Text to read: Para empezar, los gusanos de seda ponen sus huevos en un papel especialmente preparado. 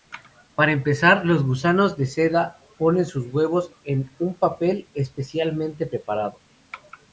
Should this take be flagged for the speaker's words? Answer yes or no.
no